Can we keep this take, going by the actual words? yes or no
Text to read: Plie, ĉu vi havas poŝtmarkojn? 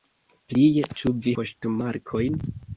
no